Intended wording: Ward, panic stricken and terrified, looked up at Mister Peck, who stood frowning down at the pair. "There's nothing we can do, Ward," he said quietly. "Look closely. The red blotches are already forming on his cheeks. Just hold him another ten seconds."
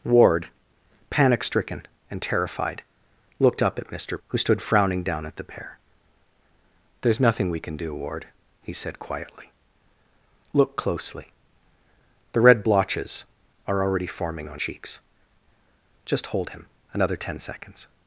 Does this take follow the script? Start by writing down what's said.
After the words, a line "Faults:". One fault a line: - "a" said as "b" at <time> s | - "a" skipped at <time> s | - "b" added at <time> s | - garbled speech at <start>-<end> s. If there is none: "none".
Ward, panic stricken and terrified, looked up at Mister Who stood frowning down at the pair. "There's nothing we can do, Ward," he said quietly. "Look closely. The red blotches are already forming on cheeks. Just hold him another ten seconds."
Faults:
- "Peck" skipped at 4.2 s
- "his" skipped at 14.6 s